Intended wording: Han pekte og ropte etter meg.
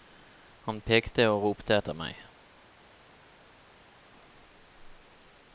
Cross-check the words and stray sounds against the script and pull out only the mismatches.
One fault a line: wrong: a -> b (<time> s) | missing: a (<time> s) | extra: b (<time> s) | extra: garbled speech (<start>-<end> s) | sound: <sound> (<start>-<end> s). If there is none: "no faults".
no faults